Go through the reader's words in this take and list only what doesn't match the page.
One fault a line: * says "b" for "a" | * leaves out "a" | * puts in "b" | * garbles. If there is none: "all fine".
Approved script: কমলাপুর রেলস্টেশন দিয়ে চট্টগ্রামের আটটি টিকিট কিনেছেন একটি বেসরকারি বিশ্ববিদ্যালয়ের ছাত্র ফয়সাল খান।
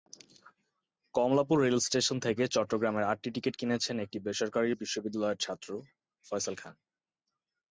* says "থেকে" for "দিয়ে"